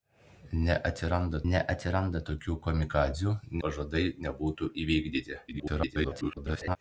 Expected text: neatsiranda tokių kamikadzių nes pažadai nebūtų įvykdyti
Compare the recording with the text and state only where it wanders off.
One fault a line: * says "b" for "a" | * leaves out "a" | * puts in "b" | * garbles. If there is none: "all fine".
* puts in "neatsiranda"
* leaves out "nes"
* garbles